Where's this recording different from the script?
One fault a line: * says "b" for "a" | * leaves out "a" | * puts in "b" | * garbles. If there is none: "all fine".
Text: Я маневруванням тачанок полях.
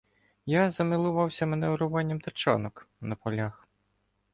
* puts in "замилувався"
* puts in "на"